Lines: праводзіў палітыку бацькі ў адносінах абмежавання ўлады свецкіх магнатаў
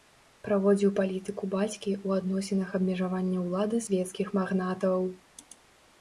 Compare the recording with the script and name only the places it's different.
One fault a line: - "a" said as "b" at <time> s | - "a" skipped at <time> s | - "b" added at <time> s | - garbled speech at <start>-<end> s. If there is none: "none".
none